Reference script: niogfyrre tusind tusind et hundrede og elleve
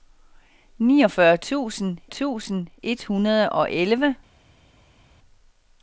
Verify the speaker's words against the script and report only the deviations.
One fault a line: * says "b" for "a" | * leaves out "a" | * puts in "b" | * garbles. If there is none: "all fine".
all fine